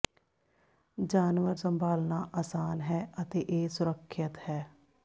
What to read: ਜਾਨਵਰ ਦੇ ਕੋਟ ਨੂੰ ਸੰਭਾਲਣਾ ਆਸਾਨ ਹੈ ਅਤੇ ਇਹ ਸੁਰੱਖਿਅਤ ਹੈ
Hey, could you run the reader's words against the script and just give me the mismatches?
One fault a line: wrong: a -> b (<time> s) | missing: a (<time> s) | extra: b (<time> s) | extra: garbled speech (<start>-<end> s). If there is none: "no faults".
missing: ਦੇ ਕੋਟ ਨੂੰ (1.6 s)